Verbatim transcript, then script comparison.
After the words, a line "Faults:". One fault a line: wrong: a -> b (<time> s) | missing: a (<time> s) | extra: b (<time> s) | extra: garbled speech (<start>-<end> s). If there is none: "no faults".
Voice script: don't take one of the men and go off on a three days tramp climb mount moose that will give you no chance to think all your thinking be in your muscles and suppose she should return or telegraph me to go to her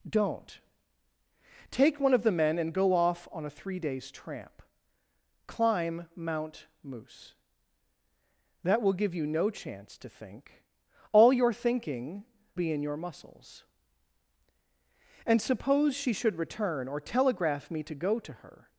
don't take one of the men and go off on a three days tramp climb mount moose that will give you no chance to think all your thinking be in your muscles and suppose she should return or telegraph me to go to her
Faults:
no faults